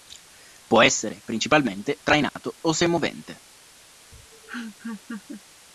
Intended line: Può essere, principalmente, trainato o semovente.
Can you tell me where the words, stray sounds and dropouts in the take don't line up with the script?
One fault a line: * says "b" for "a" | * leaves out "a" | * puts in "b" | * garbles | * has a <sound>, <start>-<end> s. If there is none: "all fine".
* has a dropout, 2.3-2.4 s
* has a laugh, 4.1-5.4 s